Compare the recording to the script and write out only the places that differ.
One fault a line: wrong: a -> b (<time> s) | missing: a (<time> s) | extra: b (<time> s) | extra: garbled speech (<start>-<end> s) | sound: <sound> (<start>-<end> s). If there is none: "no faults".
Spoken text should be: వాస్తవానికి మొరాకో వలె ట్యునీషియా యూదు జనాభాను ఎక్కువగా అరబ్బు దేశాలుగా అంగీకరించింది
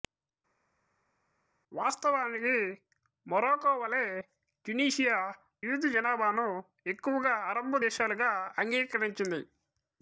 no faults